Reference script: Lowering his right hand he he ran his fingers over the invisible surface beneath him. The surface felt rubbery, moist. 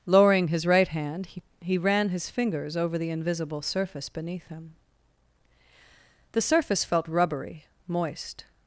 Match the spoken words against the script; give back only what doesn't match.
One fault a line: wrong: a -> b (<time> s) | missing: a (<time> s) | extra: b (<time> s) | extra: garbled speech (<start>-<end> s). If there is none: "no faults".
no faults